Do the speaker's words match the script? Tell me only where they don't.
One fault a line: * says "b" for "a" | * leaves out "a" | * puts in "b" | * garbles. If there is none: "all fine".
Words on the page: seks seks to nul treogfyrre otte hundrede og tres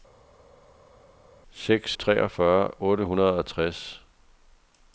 * leaves out "seks to nul"